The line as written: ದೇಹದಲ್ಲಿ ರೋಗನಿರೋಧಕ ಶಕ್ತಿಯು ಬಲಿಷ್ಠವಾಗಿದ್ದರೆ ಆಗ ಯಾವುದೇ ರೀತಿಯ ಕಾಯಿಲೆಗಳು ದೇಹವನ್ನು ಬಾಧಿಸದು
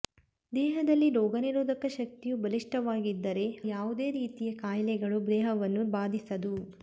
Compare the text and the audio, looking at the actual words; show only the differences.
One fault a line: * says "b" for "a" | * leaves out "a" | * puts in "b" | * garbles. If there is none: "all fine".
* leaves out "ಆಗ"